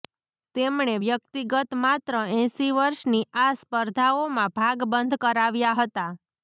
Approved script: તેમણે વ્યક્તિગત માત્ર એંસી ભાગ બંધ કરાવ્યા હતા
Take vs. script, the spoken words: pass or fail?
fail